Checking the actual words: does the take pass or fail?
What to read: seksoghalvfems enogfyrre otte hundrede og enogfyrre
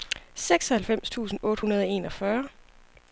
fail